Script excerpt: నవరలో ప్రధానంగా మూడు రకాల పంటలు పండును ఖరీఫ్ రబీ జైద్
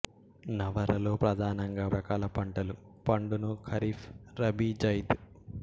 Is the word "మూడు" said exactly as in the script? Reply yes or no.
no